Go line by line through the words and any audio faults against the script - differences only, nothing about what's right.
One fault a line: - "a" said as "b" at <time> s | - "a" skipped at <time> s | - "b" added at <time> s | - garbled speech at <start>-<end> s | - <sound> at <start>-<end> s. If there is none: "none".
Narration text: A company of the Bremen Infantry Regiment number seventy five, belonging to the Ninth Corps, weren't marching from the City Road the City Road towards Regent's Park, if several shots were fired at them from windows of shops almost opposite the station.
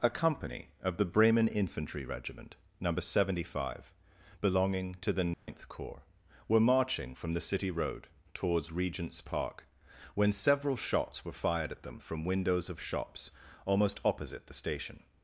- dropout at 5.3-5.5 s
- "weren't" said as "were" at 6.5 s
- "the City Road" skipped at 8.1 s
- "if" said as "when" at 10.1 s